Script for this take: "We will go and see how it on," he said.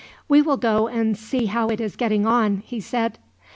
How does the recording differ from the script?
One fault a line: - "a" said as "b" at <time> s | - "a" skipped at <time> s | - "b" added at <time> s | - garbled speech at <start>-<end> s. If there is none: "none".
- "is getting" added at 1.8 s